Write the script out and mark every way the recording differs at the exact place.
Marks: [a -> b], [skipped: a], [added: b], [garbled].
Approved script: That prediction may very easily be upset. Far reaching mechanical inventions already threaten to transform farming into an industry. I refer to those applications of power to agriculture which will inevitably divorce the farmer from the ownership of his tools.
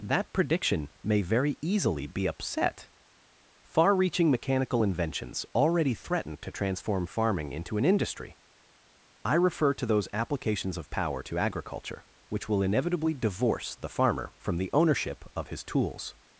That prediction may very easily be upset. Far reaching mechanical inventions already threaten to transform farming into an industry. I refer to those applications of power to agriculture which will inevitably divorce the farmer from the ownership of his tools.